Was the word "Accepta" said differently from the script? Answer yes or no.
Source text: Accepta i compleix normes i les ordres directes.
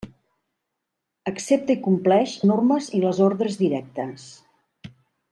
no